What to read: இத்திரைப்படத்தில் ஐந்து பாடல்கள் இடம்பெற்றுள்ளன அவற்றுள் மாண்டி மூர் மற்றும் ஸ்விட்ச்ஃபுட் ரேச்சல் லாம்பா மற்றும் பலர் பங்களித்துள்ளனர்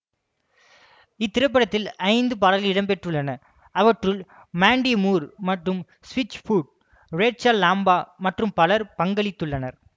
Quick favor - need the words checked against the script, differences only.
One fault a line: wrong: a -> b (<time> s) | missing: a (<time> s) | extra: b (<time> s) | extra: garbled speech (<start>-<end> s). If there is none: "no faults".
no faults